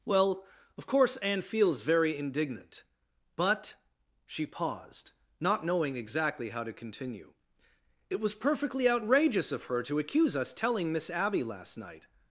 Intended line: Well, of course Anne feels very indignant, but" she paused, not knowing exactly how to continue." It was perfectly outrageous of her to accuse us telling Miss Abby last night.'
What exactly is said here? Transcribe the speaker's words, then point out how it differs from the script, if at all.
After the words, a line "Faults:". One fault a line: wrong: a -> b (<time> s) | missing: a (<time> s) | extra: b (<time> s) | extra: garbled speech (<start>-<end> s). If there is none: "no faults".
Well, of course Anne feels very indignant, but" she paused, not knowing exactly how to continue." It was perfectly outrageous of her to accuse us telling Miss Abby last night.'
Faults:
no faults